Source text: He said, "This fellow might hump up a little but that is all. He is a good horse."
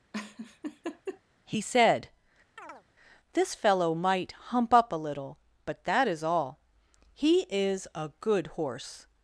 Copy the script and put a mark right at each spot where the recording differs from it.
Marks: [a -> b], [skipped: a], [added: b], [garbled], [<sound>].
[laugh] He said, [chirp] "This fellow might hump up a little but that is all. He is a good horse."